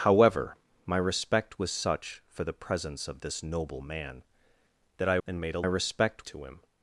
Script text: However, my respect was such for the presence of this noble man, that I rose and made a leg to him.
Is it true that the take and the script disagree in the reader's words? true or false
true